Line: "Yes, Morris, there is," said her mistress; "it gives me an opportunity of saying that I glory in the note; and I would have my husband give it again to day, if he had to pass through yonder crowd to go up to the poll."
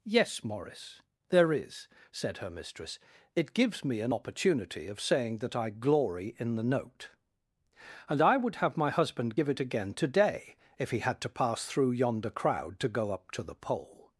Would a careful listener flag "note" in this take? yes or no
no